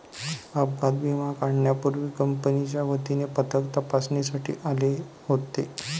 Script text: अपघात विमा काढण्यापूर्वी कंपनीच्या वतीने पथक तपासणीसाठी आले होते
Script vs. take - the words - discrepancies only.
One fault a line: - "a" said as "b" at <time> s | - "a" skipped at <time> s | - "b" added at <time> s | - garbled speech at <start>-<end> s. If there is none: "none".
none